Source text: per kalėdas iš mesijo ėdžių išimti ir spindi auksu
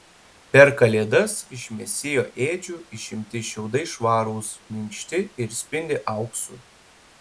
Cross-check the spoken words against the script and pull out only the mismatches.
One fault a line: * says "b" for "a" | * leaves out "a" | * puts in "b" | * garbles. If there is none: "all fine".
* puts in "šiaudai švarūs minkšti"